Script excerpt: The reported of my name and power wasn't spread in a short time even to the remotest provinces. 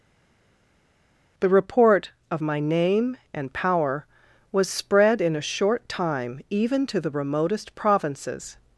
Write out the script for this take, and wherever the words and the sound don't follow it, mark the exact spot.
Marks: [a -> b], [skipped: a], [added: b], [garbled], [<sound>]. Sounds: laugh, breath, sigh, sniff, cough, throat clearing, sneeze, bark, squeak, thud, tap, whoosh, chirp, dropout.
The [reported -> report] of my name and power [wasn't -> was] spread in a short time even to the remotest provinces.